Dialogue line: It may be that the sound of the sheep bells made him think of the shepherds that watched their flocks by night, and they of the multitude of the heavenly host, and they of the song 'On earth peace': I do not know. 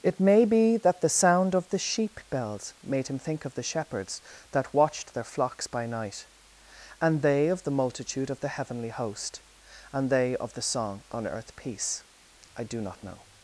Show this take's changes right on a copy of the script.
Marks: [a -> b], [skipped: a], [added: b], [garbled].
It may be that the sound of the sheep bells made him think of the shepherds that watched their flocks by night, and they of the multitude of the heavenly host, and they of the song 'On earth peace': I do not know.